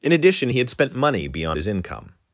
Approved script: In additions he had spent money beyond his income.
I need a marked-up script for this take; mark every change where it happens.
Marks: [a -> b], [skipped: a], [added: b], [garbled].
In [additions -> addition] he had spent money beyond his income.